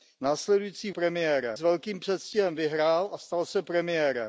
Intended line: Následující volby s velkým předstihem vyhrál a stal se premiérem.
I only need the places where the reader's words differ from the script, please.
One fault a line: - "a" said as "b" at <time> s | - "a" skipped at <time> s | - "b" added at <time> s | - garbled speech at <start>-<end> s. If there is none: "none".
- "volby" said as "premiérem" at 0.9 s